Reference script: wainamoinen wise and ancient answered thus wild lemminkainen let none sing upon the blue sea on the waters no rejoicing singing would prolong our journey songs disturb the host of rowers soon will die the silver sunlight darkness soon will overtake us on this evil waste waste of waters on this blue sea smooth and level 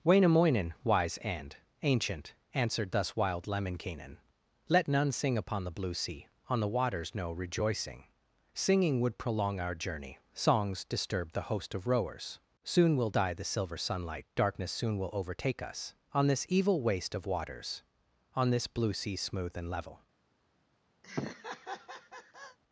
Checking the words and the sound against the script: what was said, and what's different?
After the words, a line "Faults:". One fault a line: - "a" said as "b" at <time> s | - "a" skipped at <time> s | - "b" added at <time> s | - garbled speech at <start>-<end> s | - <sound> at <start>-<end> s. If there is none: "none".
wainamoinen wise and ancient answered thus wild lemminkainen let none sing upon the blue sea on the waters no rejoicing singing would prolong our journey songs disturb the host of rowers soon will die the silver sunlight darkness soon will overtake us on this evil waste of waters on this blue sea smooth and level
Faults:
- "waste" skipped at 17.2 s
- laugh at 21.0-22.6 s